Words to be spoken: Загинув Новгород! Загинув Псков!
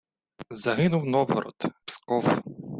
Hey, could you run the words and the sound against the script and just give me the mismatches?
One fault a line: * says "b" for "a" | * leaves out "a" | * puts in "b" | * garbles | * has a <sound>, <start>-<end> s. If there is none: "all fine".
* leaves out "Загинув"